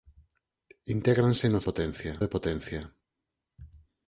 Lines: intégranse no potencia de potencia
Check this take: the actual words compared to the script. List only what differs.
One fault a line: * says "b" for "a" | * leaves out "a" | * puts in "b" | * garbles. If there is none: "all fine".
all fine